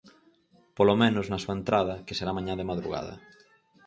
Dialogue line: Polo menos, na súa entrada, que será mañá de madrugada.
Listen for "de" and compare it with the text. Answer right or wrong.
right